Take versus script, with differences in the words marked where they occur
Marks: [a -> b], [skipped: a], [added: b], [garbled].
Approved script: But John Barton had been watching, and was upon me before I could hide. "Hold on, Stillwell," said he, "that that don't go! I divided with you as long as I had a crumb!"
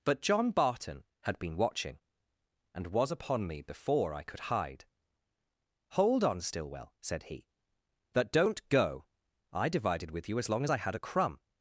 But John Barton had been watching, and was upon me before I could hide. "Hold on, Stillwell," said he, "that [skipped: that] don't go! I divided with you as long as I had a crumb!"